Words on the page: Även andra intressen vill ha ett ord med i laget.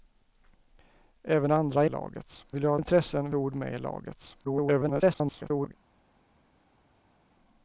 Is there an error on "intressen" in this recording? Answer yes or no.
yes